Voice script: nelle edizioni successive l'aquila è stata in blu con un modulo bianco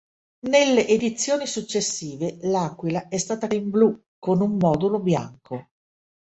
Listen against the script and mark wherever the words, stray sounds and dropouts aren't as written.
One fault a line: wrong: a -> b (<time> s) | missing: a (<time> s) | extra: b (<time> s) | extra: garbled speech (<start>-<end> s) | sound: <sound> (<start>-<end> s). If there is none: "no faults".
no faults